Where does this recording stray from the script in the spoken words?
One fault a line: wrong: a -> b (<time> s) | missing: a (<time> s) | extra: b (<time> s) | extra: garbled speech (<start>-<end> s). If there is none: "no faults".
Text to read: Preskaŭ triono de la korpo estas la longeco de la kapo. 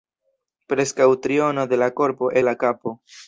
missing: estas la longeco (2.3 s)